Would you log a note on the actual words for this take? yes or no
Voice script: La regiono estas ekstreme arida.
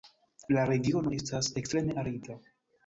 no